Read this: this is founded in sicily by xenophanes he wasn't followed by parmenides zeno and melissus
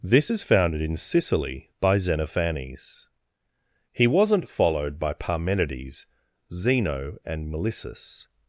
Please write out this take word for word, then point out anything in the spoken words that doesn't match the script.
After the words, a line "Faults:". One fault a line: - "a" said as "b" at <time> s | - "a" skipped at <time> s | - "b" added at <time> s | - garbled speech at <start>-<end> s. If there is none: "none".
this is founded in sicily by xenophanes he wasn't followed by parmenides zeno and melissus
Faults:
none